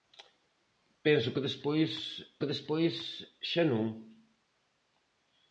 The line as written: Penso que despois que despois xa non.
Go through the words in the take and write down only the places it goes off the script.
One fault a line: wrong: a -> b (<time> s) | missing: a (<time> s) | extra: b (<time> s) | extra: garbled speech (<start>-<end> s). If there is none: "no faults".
no faults